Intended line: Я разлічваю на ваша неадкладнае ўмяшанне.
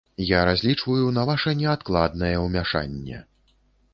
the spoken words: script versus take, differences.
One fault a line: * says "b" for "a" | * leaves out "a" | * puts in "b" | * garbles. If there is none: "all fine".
all fine